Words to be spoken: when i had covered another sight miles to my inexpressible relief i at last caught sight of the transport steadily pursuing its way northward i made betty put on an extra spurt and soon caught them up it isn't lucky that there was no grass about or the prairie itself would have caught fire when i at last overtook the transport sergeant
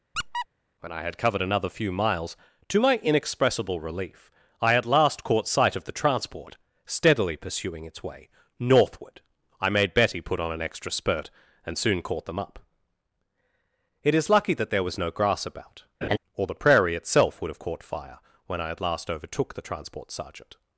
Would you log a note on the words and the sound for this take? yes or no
yes